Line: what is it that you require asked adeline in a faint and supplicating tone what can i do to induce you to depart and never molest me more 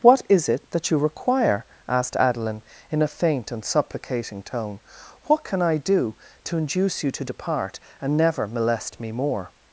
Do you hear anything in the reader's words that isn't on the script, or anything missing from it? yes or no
no